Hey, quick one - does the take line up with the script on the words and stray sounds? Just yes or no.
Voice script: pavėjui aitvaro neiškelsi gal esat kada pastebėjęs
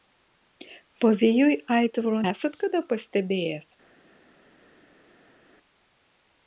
no